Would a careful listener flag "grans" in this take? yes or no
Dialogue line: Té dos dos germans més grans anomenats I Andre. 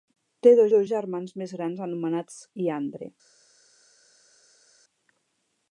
no